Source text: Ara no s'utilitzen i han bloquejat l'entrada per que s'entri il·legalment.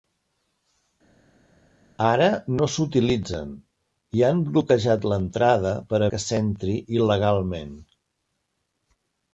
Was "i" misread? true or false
false